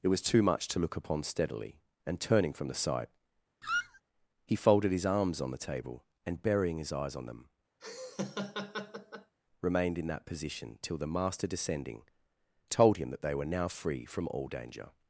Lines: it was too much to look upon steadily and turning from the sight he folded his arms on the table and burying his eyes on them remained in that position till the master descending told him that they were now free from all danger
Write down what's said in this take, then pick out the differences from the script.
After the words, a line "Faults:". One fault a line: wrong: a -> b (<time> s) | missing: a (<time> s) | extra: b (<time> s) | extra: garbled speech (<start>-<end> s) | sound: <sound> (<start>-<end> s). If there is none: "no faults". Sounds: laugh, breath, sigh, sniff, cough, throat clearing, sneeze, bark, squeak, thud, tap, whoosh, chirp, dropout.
it was too much to look upon steadily and turning from the sight he folded his arms on the table and burying his eyes on them remained in that position till the master descending told him that they were now free from all danger
Faults:
sound: squeak (3.6-4.0 s)
sound: laugh (7.8-9.3 s)